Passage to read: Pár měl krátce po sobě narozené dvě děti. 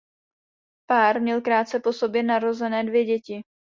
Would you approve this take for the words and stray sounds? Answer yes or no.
yes